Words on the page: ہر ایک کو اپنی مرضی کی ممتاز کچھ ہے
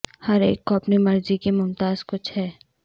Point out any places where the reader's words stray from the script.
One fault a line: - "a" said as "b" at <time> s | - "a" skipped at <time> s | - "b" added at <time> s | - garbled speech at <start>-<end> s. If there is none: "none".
none